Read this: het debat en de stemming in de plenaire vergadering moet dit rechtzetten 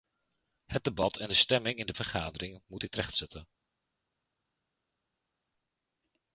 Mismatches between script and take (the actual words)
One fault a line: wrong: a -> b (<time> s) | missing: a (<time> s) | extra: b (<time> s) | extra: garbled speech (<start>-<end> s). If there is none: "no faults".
missing: plenaire (1.9 s)